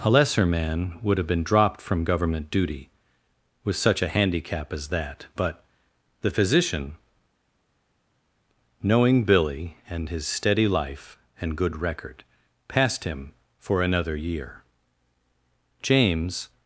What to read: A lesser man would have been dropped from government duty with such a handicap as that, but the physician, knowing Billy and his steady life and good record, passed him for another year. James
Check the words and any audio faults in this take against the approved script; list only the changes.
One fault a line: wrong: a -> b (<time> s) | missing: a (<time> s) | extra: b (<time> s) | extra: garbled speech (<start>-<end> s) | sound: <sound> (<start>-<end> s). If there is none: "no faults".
no faults